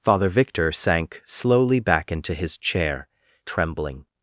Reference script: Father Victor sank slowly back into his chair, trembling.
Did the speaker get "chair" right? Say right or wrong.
right